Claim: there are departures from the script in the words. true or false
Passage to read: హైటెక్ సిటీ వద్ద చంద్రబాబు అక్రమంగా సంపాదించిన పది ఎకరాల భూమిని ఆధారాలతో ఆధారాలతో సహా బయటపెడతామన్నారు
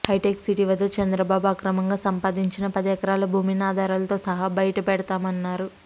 true